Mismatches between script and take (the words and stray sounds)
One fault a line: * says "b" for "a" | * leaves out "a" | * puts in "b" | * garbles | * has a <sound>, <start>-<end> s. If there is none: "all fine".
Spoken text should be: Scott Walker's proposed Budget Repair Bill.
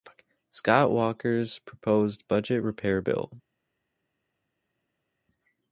all fine